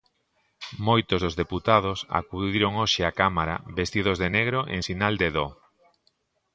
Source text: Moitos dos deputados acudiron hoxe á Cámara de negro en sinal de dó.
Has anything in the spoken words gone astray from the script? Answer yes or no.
yes